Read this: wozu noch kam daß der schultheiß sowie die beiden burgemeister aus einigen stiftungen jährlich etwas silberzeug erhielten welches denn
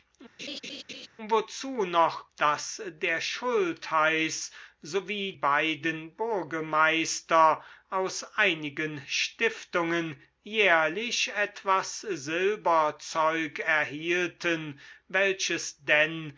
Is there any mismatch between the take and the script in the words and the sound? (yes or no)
yes